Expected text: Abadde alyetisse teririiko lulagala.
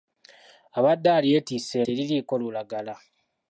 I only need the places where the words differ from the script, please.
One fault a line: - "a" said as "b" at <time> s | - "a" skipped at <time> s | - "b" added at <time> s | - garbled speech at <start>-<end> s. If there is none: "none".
none